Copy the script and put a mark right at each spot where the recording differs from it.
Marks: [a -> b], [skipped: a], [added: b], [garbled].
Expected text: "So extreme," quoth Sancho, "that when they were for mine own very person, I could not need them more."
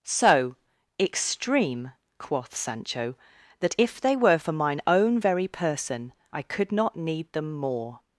"So extreme," quoth Sancho, "that [when -> if] they were for mine own very person, I could not need them more."